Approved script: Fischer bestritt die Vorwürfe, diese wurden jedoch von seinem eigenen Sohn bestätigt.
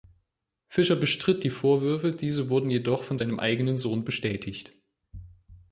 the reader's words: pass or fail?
pass